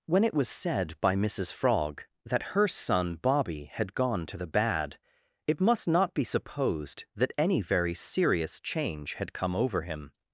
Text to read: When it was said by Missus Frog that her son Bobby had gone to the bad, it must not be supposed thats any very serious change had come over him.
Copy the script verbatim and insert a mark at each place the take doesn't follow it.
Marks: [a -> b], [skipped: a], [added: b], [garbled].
When it was said by Missus Frog that her son Bobby had gone to the bad, it must not be supposed [thats -> that] any very serious change had come over him.